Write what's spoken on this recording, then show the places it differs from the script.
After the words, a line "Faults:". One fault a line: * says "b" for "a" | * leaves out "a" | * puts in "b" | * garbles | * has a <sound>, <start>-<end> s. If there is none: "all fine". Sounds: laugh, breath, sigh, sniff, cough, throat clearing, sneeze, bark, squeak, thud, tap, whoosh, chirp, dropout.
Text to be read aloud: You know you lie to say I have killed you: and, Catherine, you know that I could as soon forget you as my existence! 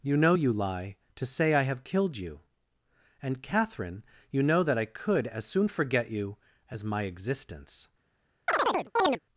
You know you lie to say I have killed you: and, Catherine, you know that I could as soon forget you as my existence!
Faults:
* has a chirp, 8.5-9.2 s